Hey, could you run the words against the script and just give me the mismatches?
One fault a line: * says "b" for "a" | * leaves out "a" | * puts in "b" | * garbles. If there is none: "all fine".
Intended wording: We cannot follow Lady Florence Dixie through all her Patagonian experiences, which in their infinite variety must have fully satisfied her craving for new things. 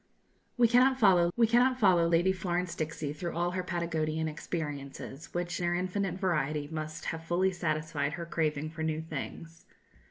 * puts in "we cannot follow"
* leaves out "in"